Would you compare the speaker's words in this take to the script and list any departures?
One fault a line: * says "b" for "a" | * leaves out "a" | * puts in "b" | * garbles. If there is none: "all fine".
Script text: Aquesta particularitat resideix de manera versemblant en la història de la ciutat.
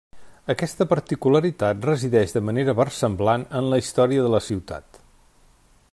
all fine